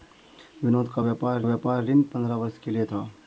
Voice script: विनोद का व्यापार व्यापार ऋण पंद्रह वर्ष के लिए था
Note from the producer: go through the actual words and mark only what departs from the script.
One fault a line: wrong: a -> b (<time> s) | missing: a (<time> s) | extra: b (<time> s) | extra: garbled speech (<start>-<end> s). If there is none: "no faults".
no faults